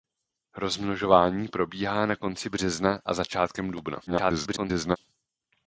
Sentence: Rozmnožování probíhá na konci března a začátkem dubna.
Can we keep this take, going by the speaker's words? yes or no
no